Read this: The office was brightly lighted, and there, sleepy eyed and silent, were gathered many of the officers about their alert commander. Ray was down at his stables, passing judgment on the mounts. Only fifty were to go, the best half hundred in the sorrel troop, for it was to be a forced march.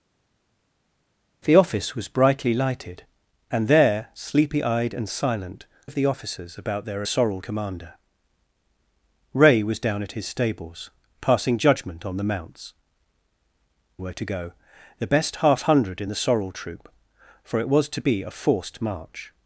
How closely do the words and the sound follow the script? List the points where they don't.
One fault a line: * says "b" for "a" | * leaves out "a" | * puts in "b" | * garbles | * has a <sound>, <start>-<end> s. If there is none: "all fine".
* leaves out "were gathered many"
* says "sorrel" for "alert"
* leaves out "Only fifty"